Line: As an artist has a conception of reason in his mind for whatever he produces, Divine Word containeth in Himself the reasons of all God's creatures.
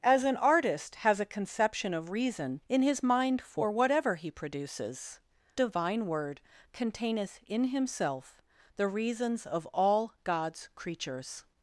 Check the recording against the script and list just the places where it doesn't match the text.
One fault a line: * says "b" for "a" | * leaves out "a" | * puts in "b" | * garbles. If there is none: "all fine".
all fine